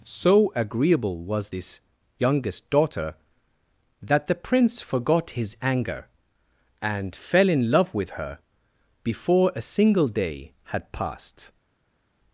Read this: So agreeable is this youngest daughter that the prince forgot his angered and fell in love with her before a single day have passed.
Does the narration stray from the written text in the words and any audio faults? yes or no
yes